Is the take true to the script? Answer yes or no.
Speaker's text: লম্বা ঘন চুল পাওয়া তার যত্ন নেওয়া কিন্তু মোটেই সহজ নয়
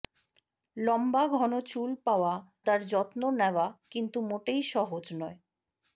yes